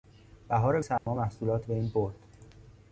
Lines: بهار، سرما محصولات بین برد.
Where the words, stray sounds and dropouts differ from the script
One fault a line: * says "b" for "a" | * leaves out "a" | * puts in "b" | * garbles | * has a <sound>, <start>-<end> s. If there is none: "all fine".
* has a dropout, 1.0-1.1 s